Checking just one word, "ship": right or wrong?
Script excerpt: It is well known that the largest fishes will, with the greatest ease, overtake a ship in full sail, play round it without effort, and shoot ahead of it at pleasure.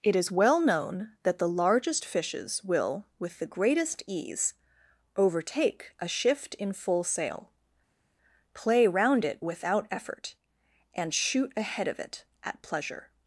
wrong